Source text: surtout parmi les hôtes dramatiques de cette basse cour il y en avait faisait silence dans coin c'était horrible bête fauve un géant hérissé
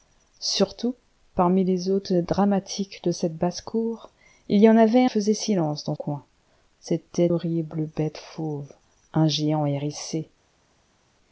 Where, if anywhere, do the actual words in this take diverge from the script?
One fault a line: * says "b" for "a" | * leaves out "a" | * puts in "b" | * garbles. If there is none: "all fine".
all fine